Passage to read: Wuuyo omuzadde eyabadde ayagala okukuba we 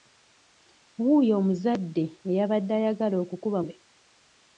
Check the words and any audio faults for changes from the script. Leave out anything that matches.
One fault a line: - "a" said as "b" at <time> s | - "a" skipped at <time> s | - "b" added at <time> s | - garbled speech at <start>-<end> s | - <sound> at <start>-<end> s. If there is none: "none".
none